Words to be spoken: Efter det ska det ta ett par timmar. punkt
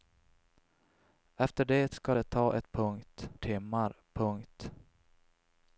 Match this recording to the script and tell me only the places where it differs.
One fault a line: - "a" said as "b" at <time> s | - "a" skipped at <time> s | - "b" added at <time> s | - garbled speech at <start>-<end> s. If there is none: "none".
- "par" said as "punkt" at 2.7 s